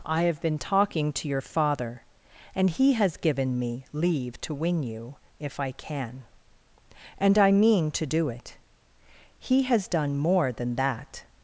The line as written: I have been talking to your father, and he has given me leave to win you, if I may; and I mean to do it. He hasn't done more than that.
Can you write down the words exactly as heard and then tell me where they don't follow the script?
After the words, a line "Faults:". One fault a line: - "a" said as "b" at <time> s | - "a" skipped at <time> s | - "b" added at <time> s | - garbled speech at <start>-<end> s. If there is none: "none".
I have been talking to your father, and he has given me leave to win you, if I can; and I mean to do it. He has done more than that.
Faults:
- "may" said as "can" at 5.7 s
- "hasn't" said as "has" at 9.6 s